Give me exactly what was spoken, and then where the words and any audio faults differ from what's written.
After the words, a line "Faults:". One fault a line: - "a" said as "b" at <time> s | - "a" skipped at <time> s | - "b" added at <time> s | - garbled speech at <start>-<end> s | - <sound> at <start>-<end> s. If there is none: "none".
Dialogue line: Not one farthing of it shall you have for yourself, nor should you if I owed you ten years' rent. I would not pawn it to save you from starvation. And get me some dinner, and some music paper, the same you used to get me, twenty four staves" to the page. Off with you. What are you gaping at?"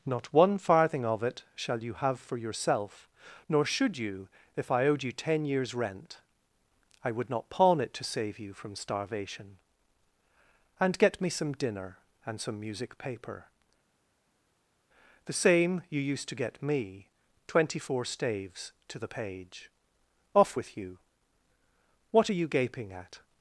Not one farthing of it shall you have for yourself, nor should you if I owed you ten years' rent. I would not pawn it to save you from starvation. And get me some dinner, and some music paper, the same you used to get me, twenty four staves" to the page. Off with you. What are you gaping at?"
Faults:
none